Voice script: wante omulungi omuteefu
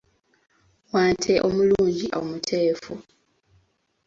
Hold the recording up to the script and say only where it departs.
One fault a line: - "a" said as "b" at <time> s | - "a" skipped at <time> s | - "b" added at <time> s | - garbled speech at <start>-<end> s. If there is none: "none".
none